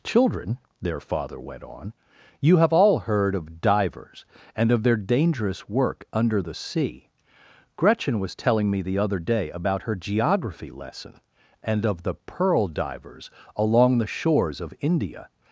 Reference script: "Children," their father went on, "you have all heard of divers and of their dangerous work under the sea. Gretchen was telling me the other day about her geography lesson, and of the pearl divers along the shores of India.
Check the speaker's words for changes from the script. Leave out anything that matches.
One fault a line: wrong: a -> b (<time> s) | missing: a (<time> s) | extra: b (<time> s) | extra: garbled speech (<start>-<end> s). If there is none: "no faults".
no faults